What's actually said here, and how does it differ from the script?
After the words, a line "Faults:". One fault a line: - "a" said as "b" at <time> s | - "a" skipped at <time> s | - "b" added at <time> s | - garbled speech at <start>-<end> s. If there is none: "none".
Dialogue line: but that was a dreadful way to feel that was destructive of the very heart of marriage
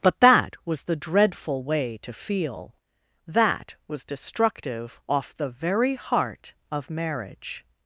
but that was the dreadful way to feel that was destructive off the very heart of marriage
Faults:
- "a" said as "the" at 0.8 s
- "of" said as "off" at 5.1 s